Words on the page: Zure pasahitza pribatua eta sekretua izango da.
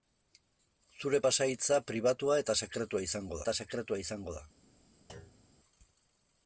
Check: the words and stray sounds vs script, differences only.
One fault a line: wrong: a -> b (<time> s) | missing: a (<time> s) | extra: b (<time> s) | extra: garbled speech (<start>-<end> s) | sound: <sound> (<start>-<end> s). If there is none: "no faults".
extra: eta sekretua izango (3.4 s)
sound: thud (5.1-5.6 s)